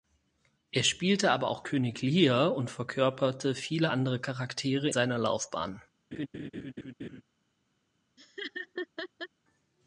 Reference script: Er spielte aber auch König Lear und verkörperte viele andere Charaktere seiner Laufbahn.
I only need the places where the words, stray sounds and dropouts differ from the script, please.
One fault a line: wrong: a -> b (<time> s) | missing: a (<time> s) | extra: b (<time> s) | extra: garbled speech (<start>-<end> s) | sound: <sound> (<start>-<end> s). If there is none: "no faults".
sound: laugh (6.1-7.2 s)
sound: laugh (8.2-9.3 s)